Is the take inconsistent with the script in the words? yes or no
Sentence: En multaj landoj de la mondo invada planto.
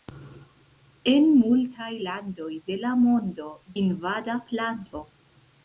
no